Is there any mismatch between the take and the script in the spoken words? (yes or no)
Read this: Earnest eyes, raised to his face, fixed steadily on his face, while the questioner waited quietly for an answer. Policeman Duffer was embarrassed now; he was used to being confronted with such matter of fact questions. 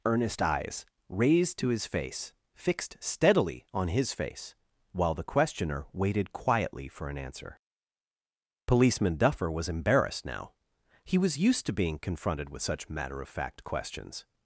no